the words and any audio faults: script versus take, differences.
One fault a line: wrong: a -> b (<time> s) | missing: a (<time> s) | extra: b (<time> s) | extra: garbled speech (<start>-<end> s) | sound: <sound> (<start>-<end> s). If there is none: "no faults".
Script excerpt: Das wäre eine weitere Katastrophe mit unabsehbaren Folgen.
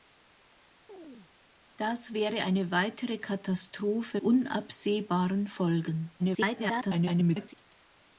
sound: chirp (0.9-1.3 s)
missing: mit (4.2 s)
extra: garbled speech (6.2-7.5 s)